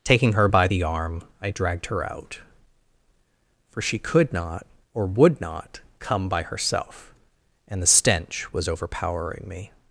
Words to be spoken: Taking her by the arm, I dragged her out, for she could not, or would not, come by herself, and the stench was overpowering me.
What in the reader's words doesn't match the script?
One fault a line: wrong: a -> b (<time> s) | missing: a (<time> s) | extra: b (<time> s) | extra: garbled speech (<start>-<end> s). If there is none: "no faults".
no faults